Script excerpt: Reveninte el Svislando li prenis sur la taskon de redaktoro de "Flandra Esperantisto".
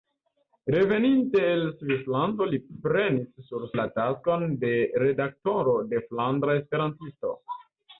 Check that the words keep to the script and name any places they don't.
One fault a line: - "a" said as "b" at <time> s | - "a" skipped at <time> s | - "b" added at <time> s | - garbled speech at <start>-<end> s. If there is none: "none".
none